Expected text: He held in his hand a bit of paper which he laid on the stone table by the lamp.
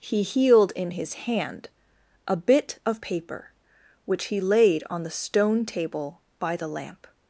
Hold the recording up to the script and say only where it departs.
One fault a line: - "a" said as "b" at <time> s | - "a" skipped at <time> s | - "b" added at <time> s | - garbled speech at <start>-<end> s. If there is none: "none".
- "held" said as "healed" at 0.2 s